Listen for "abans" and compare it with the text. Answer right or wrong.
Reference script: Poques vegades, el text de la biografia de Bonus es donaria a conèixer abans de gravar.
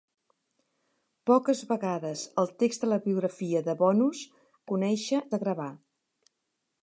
wrong